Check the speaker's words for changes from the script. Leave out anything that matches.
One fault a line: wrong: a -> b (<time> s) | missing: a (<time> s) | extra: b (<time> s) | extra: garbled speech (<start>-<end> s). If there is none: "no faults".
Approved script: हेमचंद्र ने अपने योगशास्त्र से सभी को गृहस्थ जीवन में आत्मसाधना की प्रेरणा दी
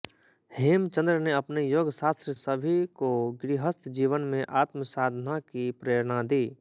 missing: से (2.3 s)